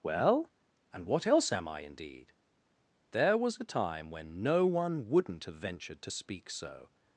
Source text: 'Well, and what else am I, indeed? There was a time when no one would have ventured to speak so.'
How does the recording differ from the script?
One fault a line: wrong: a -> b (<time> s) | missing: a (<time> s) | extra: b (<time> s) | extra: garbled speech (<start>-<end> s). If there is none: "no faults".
wrong: would -> wouldn't (5.1 s)